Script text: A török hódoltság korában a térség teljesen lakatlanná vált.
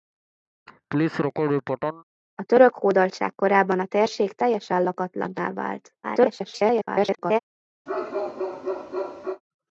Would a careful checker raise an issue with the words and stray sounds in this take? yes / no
yes